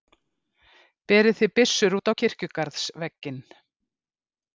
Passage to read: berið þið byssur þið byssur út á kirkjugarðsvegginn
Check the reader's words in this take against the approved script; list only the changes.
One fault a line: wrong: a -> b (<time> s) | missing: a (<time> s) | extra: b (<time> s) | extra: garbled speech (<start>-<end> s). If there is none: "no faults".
missing: þið byssur (1.9 s)